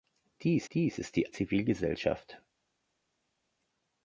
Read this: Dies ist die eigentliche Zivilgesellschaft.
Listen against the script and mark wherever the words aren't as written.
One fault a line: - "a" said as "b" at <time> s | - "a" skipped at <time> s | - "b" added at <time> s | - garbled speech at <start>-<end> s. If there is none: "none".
- "dies" added at 0.7 s
- "eigentliche" skipped at 1.3 s